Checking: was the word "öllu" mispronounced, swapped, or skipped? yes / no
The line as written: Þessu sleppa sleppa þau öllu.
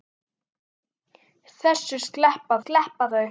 no